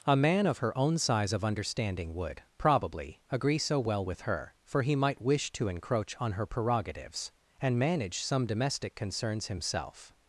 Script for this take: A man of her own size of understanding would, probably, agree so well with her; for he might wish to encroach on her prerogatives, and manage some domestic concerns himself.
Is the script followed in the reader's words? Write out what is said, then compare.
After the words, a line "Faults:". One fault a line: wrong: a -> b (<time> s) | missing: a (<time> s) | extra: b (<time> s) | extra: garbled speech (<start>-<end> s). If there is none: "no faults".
A man of her own size of understanding would, probably, agree so well with her; for he might wish to encroach on her prerogatives, and manage some domestic concerns himself.
Faults:
no faults